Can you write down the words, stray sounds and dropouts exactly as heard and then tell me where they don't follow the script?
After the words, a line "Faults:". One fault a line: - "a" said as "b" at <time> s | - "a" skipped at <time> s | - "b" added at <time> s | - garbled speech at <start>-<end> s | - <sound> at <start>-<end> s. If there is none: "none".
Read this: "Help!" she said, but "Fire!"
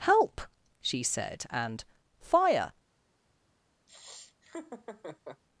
"Help!" she said, and "Fire!"
Faults:
- "but" said as "and" at 1.5 s
- laugh at 3.9-5.4 s